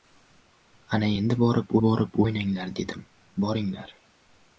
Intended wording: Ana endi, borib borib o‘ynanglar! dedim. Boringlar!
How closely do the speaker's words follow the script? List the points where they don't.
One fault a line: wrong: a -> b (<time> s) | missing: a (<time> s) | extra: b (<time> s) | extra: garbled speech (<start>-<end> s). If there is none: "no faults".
no faults